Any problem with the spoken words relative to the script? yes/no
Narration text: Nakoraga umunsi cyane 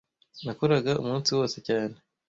yes